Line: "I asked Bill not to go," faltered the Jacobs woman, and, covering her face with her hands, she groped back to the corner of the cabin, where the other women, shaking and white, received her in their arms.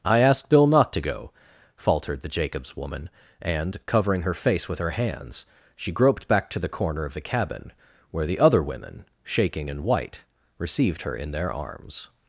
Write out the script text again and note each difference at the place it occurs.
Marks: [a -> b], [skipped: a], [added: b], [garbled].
"I asked Bill not to go," faltered the Jacobs woman, and, covering her face with her hands, she groped back to the corner of the cabin, where the other women, shaking and white, received her in their arms.